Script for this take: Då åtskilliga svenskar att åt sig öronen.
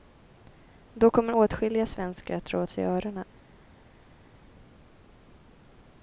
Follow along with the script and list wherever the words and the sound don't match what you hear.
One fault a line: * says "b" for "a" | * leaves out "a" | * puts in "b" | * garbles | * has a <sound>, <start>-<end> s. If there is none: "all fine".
* puts in "kommer"
* puts in "dra"